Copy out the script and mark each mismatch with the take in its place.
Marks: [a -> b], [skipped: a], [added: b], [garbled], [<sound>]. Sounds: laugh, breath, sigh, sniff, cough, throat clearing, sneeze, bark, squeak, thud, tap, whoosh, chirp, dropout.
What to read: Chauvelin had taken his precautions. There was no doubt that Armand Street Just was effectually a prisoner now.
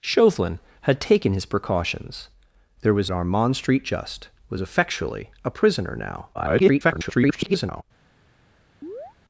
Chauvelin had taken his precautions. There was [skipped: no doubt that] Armand Street Just was effectually a prisoner now. [garbled] [chirp]